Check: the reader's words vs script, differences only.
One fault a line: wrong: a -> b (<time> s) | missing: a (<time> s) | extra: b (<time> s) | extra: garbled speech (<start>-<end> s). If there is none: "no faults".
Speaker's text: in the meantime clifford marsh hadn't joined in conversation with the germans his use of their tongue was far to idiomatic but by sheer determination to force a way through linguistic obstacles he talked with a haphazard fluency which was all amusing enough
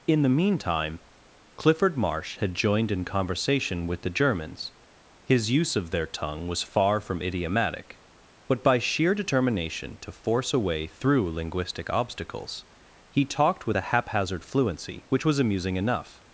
wrong: hadn't -> had (2.4 s)
wrong: to -> from (7.0 s)
missing: all (15.4 s)